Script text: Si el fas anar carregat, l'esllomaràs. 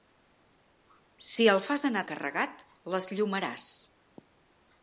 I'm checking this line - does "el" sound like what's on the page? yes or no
yes